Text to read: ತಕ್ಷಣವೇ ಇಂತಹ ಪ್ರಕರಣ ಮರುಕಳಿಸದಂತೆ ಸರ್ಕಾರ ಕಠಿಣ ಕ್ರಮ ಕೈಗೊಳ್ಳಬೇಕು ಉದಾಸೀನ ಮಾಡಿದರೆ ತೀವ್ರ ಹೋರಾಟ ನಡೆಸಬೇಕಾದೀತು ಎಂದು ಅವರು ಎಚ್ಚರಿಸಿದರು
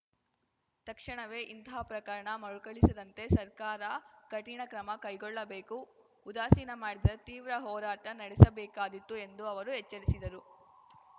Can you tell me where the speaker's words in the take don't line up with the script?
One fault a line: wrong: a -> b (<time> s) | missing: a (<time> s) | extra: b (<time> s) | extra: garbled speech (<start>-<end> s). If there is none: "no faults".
no faults